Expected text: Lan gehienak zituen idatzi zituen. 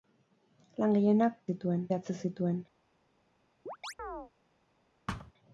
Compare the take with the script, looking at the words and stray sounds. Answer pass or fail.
fail